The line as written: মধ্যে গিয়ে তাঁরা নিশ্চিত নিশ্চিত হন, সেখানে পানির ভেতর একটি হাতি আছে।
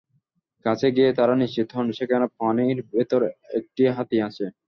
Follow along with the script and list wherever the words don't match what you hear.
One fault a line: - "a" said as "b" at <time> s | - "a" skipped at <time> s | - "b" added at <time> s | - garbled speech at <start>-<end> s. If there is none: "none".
- "মধ্যে" said as "কাছে" at 0.7 s
- "নিশ্চিত" skipped at 1.7 s